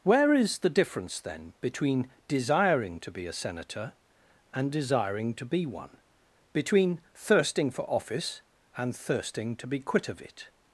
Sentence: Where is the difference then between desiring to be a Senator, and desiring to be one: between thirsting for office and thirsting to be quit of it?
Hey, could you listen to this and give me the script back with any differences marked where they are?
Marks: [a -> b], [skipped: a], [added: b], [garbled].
Where is the difference then between desiring to be a Senator, and desiring to be one: between thirsting for office and thirsting to be quit of it?